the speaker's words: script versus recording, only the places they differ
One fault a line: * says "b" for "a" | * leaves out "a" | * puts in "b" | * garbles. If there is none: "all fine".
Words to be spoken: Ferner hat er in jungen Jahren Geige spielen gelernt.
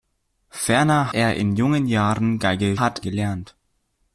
* leaves out "hat"
* says "hat" for "spielen"